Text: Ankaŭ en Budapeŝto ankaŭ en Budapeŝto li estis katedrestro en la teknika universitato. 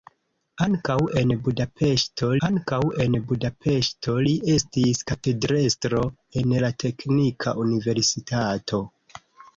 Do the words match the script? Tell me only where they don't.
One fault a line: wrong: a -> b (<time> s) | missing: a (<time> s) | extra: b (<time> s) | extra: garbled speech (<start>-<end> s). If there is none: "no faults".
no faults